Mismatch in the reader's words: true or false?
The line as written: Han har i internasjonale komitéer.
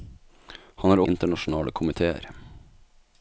false